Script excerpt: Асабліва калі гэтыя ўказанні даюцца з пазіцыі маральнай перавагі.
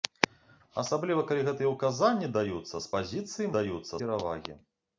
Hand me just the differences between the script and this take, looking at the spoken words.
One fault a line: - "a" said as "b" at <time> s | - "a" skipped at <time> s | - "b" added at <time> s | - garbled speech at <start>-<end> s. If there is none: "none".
- "маральнай" said as "даюцца" at 3.6 s